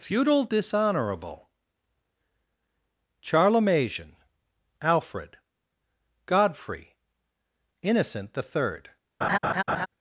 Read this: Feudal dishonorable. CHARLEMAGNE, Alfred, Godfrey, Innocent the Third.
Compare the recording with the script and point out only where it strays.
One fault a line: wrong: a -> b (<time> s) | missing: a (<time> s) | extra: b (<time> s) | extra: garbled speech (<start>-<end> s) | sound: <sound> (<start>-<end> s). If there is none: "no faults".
sound: laugh (9.2-9.9 s)